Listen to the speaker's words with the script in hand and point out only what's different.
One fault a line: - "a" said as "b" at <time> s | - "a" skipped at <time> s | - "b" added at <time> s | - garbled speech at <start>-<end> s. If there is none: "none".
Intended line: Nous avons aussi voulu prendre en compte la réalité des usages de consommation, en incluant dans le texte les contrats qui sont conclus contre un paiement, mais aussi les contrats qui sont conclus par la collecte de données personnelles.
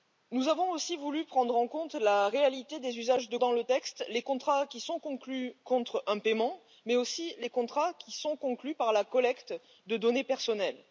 - "consommation en incluant" skipped at 3.4 s